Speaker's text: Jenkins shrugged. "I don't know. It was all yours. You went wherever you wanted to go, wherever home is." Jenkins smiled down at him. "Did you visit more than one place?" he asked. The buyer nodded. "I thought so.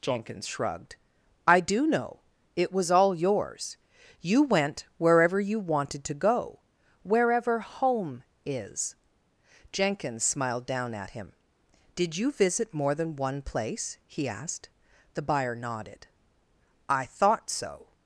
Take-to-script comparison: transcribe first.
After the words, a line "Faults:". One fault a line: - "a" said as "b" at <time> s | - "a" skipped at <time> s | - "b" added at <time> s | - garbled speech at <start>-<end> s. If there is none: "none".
Jenkins shrugged. "I do know. It was all yours. You went wherever you wanted to go, wherever home is." Jenkins smiled down at him. "Did you visit more than one place?" he asked. The buyer nodded. "I thought so.
Faults:
- "don't" said as "do" at 1.6 s